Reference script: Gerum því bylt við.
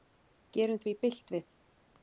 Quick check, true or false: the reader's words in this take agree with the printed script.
true